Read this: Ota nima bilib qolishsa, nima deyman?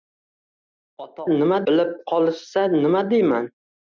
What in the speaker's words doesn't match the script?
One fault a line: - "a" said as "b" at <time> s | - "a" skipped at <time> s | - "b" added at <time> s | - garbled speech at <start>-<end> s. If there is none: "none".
none